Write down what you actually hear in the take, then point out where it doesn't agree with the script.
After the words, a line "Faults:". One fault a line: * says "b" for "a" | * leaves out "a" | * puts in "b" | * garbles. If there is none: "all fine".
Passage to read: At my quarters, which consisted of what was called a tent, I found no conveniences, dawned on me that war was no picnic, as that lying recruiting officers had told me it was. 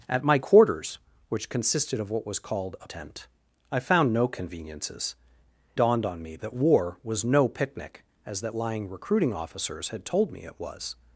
At my quarters, which consisted of what was called a tent, I found no conveniences, dawned on me that war was no picnic, as that lying recruiting officers had told me it was.
Faults:
all fine